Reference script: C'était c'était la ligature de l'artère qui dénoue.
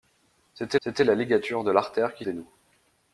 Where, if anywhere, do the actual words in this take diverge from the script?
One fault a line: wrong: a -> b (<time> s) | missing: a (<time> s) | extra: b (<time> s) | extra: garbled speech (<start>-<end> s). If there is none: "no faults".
no faults